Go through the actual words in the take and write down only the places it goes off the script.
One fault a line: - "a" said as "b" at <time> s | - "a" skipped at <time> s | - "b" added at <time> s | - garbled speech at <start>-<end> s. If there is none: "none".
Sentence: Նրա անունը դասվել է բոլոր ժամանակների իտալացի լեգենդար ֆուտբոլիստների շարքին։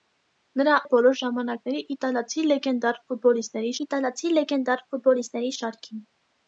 - "անունը դասվել" skipped at 0.8 s
- "իտալացի լեգենդար ֆուտբոլիստների" added at 3.9 s